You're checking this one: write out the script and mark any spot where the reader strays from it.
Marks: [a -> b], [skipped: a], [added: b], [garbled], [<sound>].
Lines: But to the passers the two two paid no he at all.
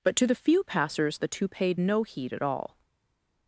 But to the [added: few] passers the two [skipped: two] paid no [he -> heed] at all.